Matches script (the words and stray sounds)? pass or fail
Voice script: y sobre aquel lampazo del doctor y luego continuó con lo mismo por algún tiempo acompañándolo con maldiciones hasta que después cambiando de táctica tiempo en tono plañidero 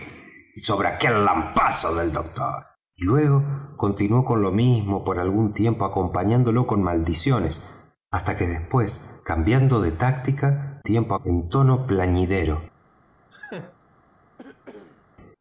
fail